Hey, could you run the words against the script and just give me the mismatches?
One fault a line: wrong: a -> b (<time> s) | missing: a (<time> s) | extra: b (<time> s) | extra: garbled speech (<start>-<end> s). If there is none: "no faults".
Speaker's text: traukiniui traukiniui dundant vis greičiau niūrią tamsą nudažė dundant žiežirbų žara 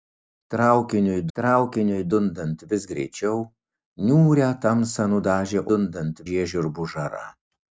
no faults